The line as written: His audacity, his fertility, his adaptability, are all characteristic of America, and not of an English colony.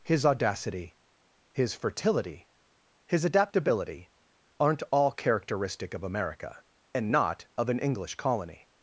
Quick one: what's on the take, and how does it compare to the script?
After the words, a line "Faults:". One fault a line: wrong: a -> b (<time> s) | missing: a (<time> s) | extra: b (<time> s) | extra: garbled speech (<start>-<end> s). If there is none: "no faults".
His audacity, his fertility, his adaptability, aren't all characteristic of America, and not of an English colony.
Faults:
wrong: are -> aren't (4.6 s)